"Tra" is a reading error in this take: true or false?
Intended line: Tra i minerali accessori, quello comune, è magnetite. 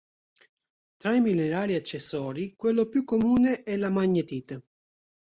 false